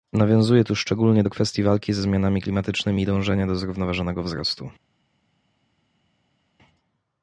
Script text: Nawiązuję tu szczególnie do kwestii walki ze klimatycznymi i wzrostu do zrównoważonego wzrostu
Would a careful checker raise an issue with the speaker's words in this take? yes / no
yes